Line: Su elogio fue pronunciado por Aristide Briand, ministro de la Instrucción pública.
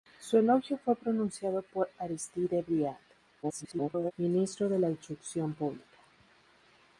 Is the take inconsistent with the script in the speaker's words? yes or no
yes